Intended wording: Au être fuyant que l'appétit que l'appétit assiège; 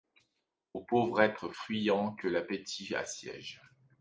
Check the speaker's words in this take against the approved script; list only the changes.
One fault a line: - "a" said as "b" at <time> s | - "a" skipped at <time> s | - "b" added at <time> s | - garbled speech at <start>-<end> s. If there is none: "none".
- "pauvre" added at 0.8 s
- "que l'appétit" skipped at 2.9 s